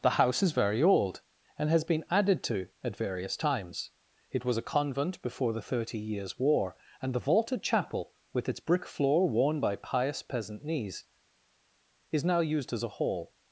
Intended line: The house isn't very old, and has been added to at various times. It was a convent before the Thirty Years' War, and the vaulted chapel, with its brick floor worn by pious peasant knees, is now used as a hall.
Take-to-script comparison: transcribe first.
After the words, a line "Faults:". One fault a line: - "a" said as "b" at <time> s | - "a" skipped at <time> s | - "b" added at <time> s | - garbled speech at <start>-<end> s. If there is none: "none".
The house is very old, and has been added to at various times. It was a convent before the Thirty Years' War, and the vaulted chapel, with its brick floor worn by pious peasant knees, is now used as a hall.
Faults:
- "isn't" said as "is" at 0.4 s